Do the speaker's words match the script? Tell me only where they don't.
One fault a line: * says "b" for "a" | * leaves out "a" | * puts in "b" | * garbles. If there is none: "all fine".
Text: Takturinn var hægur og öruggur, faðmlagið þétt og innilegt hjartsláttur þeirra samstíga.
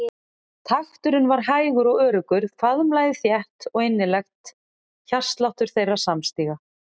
all fine